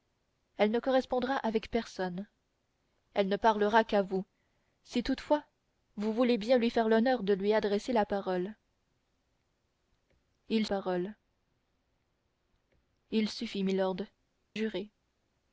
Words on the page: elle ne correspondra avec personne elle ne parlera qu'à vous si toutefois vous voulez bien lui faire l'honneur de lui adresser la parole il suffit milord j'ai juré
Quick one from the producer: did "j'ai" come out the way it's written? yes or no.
no